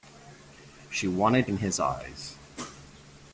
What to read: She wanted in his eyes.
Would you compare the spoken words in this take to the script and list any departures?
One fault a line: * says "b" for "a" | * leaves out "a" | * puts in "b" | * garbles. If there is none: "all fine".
all fine